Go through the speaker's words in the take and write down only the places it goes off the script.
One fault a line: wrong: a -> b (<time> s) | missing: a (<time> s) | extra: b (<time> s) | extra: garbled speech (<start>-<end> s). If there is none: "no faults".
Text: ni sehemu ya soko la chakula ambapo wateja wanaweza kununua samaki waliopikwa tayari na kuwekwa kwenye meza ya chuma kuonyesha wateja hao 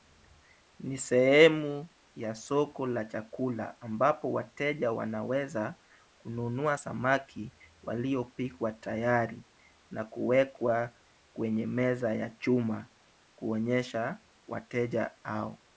no faults